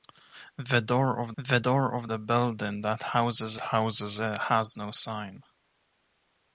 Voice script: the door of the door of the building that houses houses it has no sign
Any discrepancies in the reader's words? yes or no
no